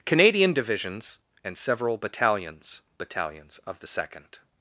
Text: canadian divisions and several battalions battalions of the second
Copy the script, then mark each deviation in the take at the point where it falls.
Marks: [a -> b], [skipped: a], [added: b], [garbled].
canadian divisions and several battalions battalions of the second